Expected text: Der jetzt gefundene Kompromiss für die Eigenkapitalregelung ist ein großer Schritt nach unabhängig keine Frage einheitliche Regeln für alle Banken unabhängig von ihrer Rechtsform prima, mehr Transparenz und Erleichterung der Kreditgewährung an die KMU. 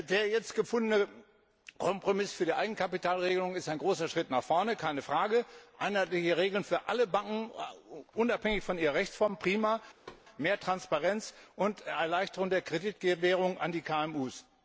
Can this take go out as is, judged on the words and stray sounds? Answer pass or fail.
fail